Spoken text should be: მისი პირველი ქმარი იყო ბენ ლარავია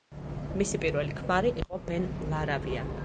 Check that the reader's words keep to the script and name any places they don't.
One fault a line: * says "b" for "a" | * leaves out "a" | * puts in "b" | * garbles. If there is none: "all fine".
all fine